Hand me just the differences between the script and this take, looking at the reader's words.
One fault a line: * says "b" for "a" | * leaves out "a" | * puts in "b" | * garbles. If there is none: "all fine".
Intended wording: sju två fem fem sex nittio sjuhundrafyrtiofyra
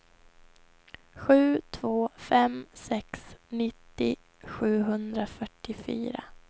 * leaves out "fem"